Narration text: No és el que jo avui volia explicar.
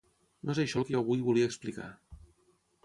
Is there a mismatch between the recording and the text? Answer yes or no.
yes